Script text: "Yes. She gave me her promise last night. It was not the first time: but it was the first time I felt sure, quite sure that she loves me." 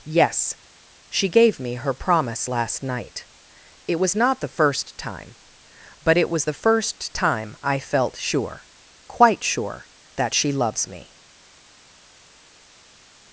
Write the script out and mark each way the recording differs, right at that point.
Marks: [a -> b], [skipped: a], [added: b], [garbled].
"Yes. She gave me her promise last night. It was not the first time: but it was the first time I felt sure, quite sure that she loves me."